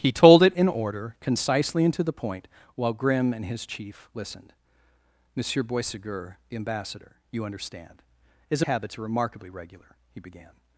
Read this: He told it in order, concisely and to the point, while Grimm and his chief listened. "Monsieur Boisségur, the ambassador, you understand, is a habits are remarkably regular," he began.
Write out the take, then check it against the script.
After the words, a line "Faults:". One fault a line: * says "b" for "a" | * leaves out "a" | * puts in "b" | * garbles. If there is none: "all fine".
He told it in order, concisely and to the point, while Grimm and his chief listened. "Monsieur Boisségur, the ambassador, you understand, is a habits are remarkably regular," he began.
Faults:
all fine